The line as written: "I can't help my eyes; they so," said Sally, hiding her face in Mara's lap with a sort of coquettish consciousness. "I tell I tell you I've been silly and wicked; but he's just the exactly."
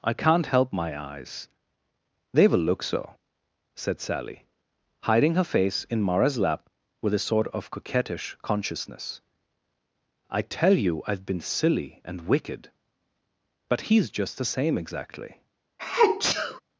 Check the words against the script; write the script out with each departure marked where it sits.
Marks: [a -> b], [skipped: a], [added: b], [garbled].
"I can't help my eyes; they [added: will look] so," said Sally, hiding her face in Mara's lap with a sort of coquettish consciousness. "I tell [skipped: I tell] you I've been silly and wicked; but he's just the [added: same] exactly."